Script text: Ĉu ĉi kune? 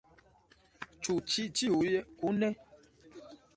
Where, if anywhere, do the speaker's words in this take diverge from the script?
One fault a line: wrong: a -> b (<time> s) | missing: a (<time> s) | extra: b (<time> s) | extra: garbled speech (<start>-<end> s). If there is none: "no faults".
extra: ĉiuj (1.6 s)